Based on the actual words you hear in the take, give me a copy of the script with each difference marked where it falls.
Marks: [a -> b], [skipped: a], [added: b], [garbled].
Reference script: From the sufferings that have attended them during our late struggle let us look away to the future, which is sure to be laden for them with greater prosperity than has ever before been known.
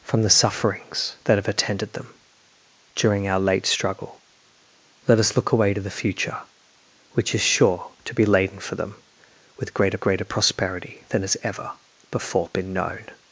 From the sufferings that have attended them during our late struggle let us look away to the future, which is sure to be laden for them with greater [added: greater] prosperity than has ever before been known.